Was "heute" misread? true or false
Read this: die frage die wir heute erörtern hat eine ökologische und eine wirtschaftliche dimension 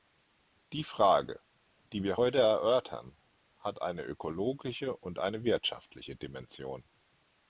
false